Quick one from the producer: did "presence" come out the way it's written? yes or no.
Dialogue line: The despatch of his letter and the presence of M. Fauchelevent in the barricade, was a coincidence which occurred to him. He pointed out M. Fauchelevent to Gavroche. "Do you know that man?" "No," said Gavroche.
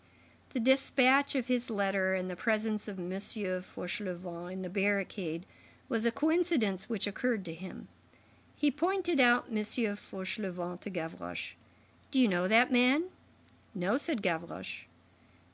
yes